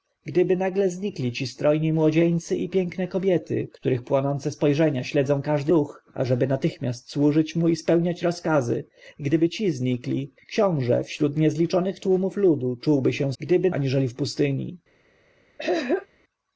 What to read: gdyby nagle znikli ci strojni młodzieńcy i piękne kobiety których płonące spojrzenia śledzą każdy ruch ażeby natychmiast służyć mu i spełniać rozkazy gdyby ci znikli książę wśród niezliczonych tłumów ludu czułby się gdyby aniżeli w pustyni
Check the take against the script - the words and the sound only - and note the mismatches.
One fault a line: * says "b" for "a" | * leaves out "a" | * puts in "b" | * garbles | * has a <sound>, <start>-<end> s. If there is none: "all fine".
* has a throat clearing, 15.6-16.1 s